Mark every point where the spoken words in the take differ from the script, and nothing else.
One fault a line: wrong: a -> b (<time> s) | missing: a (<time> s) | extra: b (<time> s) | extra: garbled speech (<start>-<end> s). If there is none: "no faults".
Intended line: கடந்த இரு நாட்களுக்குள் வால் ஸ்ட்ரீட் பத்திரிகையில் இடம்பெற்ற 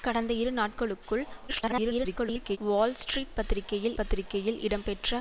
extra: garbled speech (1.5-2.6 s)
extra: பத்திரிகையில் (4.0 s)